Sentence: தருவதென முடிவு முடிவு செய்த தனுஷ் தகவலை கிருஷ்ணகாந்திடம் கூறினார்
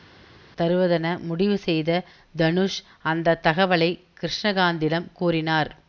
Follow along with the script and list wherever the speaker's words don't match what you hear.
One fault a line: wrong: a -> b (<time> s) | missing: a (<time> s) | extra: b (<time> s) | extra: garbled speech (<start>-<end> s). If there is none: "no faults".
missing: முடிவு (1.6 s)
extra: அந்த (3.0 s)